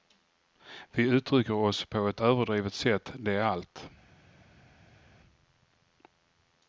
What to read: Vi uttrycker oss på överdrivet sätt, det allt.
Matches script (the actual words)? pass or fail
fail